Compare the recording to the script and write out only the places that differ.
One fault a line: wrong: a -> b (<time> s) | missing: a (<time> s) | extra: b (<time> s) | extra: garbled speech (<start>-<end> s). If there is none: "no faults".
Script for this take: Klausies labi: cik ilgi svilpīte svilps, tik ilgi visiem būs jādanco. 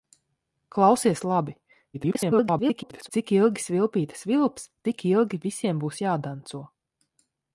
extra: garbled speech (1.9-3.1 s)